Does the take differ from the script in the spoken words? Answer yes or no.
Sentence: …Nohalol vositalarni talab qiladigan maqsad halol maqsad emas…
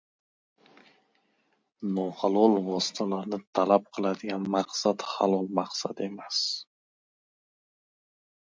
no